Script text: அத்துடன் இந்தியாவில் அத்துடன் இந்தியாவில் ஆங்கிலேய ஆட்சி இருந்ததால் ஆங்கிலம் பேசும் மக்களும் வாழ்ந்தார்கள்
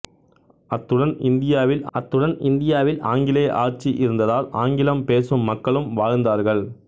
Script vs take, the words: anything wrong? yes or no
no